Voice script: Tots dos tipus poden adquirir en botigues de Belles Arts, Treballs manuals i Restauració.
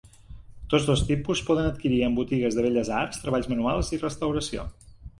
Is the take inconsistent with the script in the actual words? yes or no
no